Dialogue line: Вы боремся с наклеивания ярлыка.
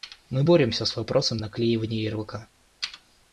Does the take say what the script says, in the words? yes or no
no